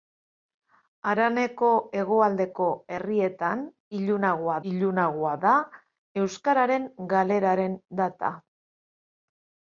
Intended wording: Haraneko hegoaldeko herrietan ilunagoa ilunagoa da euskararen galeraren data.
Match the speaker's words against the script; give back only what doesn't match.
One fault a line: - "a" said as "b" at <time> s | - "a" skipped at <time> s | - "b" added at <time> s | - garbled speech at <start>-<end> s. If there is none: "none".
none